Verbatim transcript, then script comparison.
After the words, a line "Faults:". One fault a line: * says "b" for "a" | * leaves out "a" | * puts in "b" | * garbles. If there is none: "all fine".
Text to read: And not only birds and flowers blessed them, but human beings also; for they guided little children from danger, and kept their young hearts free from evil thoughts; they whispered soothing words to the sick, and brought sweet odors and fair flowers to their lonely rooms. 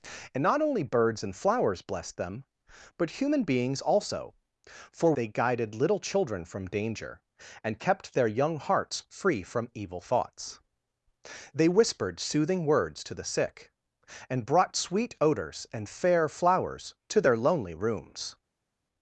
And not only birds and flowers blessed them, but human beings also; for they guided little children from danger, and kept their young hearts free from evil thoughts; they whispered soothing words to the sick, and brought sweet odors and fair flowers to their lonely rooms.
Faults:
all fine